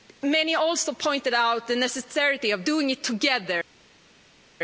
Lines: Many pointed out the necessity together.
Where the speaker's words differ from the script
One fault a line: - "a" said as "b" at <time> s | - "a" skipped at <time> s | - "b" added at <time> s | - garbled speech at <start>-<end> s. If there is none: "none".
- "also" added at 0.5 s
- "of doing it" added at 2.5 s